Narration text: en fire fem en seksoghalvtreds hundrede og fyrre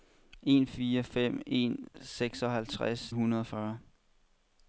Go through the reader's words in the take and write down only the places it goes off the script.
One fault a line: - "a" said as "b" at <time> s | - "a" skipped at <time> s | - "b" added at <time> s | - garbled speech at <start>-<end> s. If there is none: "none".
none